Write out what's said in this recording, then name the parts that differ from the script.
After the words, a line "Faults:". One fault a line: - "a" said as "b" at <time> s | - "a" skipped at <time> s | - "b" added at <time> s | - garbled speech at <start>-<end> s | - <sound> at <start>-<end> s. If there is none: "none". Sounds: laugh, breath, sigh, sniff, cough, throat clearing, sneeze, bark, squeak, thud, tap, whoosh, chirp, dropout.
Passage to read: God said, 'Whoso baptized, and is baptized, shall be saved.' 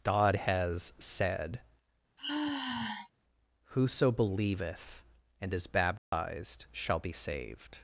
God has said, 'Whoso believeth, and is baptized, shall be saved.'
Faults:
- "has" added at 0.3 s
- sigh at 2.2-3.1 s
- "baptized" said as "believeth" at 4.1 s
- dropout at 6.0-6.1 s